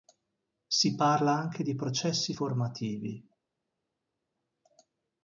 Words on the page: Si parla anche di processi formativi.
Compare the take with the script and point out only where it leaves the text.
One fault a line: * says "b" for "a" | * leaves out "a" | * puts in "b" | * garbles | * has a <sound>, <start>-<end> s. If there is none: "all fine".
all fine